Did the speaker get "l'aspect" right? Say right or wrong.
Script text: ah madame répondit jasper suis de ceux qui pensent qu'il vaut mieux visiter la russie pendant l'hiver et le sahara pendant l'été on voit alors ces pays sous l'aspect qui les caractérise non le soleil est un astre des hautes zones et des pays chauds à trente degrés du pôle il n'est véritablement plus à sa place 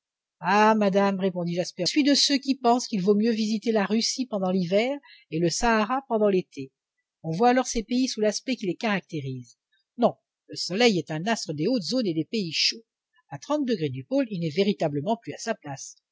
right